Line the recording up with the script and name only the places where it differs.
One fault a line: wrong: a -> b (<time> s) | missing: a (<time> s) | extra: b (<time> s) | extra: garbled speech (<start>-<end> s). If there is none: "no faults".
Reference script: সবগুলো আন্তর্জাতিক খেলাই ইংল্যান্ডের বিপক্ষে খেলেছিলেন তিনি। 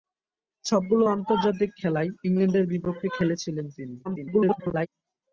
extra: garbled speech (4.0-4.9 s)